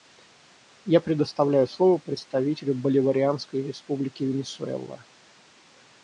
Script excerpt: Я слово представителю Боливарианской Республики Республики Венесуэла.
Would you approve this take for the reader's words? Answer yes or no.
no